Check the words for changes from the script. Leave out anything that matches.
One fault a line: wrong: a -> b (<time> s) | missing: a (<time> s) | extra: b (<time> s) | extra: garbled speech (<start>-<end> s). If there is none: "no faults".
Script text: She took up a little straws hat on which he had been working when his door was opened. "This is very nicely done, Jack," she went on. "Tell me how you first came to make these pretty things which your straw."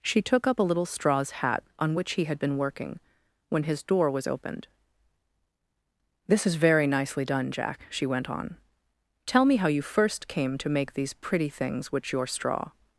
no faults